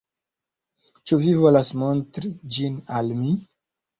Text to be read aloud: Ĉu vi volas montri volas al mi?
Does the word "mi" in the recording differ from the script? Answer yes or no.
no